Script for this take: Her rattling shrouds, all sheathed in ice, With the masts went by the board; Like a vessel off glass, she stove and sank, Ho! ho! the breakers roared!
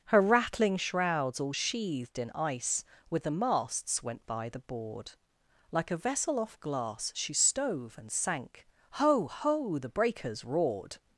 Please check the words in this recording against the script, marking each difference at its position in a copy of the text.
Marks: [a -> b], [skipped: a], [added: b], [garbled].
Her rattling shrouds, all sheathed in ice, With the masts went by the board; Like a vessel off glass, she stove and sank, Ho! ho! the breakers roared!